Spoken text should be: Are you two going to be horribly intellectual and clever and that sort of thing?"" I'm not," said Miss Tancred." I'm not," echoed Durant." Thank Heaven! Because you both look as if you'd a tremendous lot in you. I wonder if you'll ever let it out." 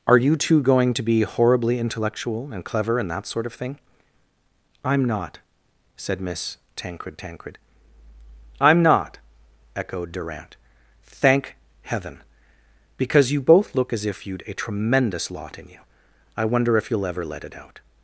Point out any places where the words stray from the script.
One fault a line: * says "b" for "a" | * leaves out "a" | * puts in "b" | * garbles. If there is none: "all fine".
* puts in "Tancred"